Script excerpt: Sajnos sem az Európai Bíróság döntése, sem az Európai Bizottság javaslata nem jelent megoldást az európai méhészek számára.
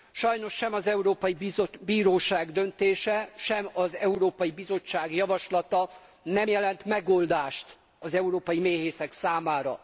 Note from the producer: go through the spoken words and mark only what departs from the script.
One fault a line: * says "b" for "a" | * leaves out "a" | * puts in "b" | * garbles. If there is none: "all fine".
all fine